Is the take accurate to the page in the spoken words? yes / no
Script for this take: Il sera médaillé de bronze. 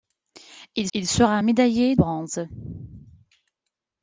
no